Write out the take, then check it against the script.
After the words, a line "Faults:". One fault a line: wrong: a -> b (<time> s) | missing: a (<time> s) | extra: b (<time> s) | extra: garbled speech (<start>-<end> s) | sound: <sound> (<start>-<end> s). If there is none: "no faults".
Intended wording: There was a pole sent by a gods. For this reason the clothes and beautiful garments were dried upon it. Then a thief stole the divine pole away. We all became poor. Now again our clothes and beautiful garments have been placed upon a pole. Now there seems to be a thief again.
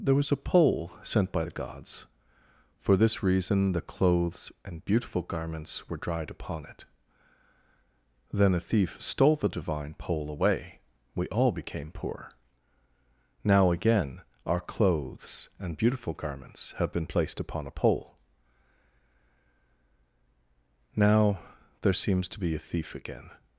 There was a pole sent by the gods. For this reason the clothes and beautiful garments were dried upon it. Then a thief stole the divine pole away. We all became poor. Now again our clothes and beautiful garments have been placed upon a pole. Now there seems to be a thief again.
Faults:
wrong: a -> the (1.4 s)